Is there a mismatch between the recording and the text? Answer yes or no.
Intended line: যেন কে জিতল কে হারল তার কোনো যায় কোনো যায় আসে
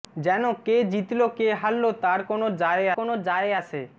no